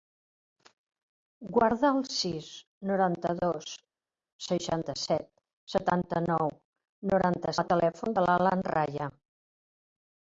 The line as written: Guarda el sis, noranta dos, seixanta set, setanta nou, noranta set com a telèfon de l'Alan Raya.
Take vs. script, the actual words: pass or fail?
fail